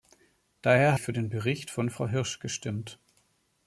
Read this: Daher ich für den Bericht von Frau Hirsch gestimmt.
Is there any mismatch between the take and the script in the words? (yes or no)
no